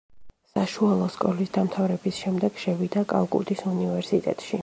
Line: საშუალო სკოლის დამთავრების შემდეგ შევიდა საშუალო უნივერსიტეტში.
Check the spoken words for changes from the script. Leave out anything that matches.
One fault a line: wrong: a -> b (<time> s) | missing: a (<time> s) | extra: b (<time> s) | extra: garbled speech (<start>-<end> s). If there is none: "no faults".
wrong: საშუალო -> კალკუტის (3.1 s)